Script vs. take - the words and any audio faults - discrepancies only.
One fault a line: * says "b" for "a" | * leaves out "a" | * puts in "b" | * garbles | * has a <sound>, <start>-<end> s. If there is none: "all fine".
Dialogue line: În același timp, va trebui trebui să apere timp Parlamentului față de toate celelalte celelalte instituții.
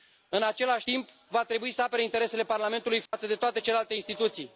* leaves out "trebui"
* says "interesele" for "timp"
* has a dropout, 3.1-3.1 s
* leaves out "celelalte"